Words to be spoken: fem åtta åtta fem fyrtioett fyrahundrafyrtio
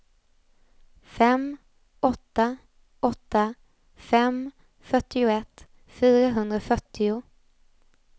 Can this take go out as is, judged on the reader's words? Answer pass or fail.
pass